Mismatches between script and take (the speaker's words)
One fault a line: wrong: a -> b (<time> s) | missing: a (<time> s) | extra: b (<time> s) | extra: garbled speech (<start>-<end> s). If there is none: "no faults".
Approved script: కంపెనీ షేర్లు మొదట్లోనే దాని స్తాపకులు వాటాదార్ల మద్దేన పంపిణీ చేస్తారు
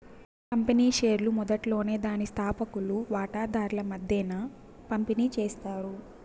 no faults